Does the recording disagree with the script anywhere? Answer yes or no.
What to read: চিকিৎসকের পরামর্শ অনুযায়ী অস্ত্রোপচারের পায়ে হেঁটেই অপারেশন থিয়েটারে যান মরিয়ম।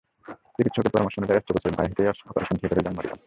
no